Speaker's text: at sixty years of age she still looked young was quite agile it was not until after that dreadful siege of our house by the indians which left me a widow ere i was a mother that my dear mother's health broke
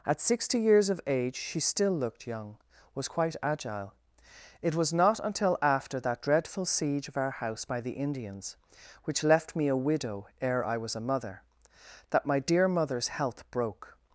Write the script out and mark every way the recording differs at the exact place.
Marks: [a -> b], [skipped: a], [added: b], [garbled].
at sixty years of age she still looked young was quite agile it was not until after that dreadful siege of our house by the indians which left me a widow ere i was a mother that my dear mother's health broke